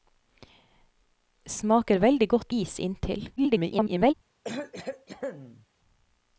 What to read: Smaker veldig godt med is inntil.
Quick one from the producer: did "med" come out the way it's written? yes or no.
no